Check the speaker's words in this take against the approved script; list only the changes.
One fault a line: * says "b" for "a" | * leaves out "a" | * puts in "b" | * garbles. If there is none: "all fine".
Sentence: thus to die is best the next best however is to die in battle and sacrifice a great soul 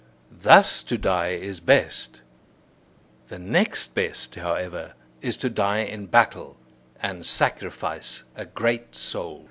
all fine